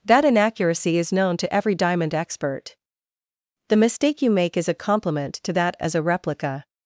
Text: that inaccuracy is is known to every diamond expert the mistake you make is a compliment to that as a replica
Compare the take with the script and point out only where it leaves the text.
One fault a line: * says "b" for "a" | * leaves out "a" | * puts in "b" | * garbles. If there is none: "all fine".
* leaves out "is"